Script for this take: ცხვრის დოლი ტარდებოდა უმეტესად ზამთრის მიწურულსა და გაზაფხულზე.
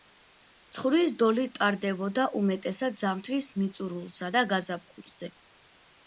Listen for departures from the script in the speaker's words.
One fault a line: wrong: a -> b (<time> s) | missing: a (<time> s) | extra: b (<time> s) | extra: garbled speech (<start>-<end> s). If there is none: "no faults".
no faults